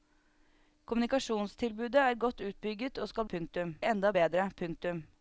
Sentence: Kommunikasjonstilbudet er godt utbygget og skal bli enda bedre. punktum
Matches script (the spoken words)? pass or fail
fail